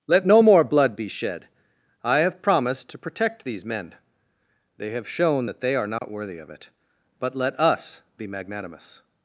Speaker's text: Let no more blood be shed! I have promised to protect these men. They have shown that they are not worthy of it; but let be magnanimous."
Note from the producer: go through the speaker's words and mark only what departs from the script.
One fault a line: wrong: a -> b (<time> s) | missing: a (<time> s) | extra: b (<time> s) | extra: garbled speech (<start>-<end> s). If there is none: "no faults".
extra: us (7.6 s)